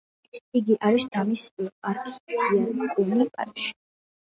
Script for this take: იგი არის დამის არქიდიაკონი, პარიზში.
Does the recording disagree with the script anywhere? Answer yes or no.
no